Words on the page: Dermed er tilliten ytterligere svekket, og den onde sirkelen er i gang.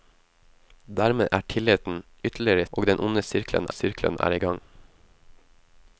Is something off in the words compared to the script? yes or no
yes